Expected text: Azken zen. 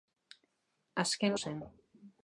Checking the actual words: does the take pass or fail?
pass